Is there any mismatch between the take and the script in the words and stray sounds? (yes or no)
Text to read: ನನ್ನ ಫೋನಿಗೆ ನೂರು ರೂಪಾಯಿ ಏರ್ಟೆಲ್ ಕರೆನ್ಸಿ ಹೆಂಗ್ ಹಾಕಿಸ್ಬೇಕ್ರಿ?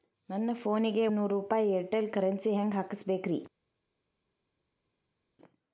no